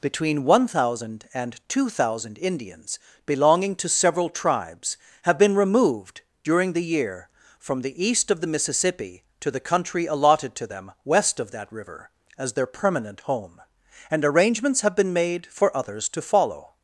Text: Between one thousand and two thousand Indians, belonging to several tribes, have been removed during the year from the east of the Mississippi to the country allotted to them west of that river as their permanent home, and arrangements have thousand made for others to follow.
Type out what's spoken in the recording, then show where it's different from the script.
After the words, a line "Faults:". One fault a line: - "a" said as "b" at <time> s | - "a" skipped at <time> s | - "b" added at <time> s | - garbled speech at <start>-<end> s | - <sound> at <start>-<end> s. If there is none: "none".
Between one thousand and two thousand Indians, belonging to several tribes, have been removed during the year from the east of the Mississippi to the country allotted to them west of that river as their permanent home, and arrangements have been made for others to follow.
Faults:
- "thousand" said as "been" at 15.0 s